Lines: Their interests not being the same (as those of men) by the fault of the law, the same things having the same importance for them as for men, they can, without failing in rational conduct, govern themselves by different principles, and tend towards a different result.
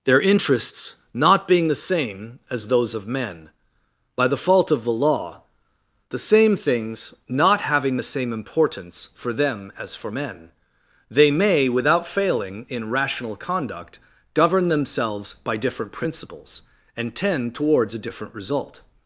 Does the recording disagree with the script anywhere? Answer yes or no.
yes